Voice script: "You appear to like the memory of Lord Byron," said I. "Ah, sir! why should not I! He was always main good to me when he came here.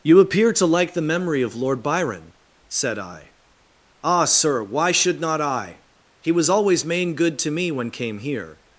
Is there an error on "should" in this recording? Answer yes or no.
no